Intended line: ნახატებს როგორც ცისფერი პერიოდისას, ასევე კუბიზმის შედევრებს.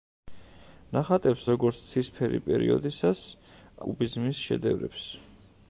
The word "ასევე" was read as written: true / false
false